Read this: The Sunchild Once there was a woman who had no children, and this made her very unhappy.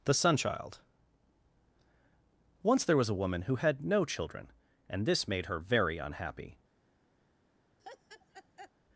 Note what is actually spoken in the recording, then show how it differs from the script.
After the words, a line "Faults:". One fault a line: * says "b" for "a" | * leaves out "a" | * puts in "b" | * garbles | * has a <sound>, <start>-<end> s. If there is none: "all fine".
The Sunchild Once there was a woman who had no children, and this made her very unhappy.
Faults:
* has a laugh, 7.8-8.7 s